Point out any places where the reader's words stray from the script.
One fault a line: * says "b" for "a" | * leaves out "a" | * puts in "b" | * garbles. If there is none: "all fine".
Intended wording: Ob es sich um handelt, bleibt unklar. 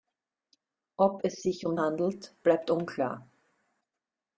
all fine